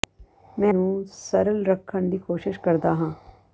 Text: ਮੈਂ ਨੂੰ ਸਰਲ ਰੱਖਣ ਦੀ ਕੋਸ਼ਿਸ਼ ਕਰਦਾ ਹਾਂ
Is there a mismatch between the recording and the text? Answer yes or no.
no